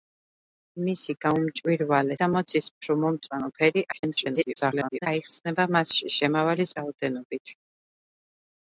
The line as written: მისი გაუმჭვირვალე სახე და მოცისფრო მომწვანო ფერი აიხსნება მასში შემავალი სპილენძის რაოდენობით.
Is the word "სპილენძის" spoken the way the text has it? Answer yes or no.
no